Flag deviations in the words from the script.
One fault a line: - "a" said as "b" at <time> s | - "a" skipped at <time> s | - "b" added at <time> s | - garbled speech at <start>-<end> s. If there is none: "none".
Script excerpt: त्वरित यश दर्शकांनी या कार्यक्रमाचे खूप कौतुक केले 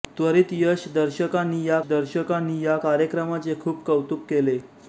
- "दर्शकांनी या" added at 1.9 s